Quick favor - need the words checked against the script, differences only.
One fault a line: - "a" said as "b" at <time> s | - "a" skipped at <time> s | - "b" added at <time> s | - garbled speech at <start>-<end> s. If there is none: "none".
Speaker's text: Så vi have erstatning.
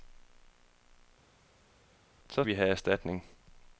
none